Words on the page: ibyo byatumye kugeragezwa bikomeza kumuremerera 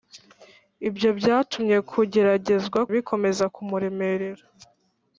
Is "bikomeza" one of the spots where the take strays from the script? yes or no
no